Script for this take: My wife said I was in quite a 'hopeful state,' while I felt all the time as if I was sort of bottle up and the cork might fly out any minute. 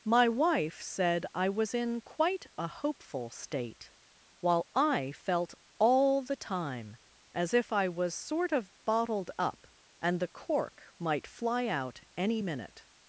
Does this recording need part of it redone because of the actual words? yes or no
yes